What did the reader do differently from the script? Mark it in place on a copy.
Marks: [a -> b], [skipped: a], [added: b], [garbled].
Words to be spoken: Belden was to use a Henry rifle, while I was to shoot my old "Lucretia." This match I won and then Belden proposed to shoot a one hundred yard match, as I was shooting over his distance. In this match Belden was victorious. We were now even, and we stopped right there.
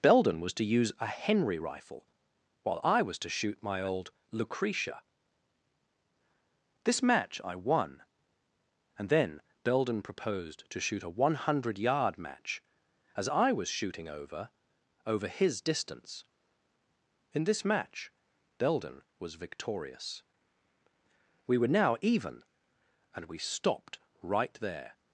Belden was to use a Henry rifle, while I was to shoot my old "Lucretia." This match I won and then Belden proposed to shoot a one hundred yard match, as I was shooting over [added: over] his distance. In this match Belden was victorious. We were now even, and we stopped right there.